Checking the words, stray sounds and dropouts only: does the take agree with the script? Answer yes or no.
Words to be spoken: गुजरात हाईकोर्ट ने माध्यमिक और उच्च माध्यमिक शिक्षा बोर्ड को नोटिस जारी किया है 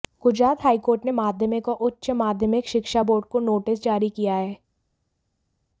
yes